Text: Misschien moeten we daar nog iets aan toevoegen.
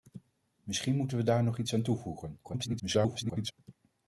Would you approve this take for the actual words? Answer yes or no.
no